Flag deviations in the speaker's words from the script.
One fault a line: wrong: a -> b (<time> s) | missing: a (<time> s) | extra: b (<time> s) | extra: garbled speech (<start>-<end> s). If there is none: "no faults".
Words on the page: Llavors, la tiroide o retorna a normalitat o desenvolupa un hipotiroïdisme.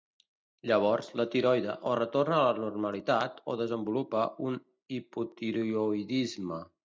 extra: la (2.5 s)